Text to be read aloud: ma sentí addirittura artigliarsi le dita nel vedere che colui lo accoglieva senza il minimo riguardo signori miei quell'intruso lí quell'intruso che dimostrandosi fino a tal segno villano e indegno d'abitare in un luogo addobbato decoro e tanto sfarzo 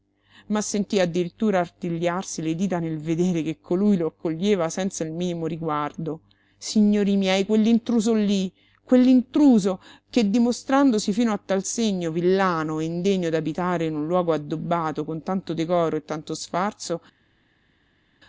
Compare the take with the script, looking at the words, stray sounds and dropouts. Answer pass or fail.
fail